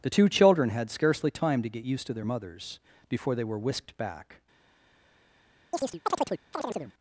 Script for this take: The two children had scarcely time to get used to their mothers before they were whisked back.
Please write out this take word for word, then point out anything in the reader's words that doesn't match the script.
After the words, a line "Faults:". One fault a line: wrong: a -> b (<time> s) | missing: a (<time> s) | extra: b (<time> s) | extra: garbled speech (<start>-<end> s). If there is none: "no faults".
The two children had scarcely time to get used to their mothers before they were whisked back.
Faults:
no faults